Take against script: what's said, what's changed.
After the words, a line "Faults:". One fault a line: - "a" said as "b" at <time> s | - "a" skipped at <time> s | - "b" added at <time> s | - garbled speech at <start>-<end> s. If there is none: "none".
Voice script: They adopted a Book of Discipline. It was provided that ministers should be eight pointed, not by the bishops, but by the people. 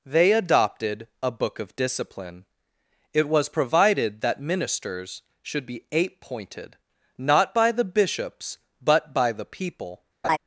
They adopted a Book of Discipline. It was provided that ministers should be eight pointed, not by the bishops, but by the people.
Faults:
none